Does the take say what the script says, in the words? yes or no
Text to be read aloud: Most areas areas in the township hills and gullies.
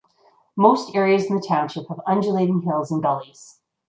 no